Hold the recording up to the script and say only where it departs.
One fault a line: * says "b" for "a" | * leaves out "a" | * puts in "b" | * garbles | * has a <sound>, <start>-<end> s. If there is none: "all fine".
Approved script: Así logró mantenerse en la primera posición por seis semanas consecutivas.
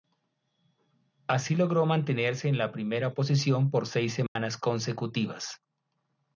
* has a dropout, 4.3-4.4 s